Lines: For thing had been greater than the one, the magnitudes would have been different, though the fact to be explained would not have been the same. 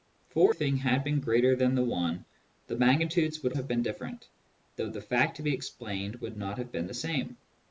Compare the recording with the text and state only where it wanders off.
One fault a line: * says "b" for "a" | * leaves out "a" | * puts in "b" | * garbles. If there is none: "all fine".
all fine